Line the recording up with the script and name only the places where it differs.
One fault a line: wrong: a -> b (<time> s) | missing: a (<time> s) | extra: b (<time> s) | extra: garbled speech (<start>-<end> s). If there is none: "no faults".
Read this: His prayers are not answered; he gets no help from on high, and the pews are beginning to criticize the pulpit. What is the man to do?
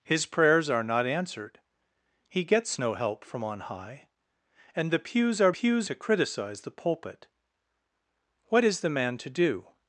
wrong: beginning -> pews (5.5 s)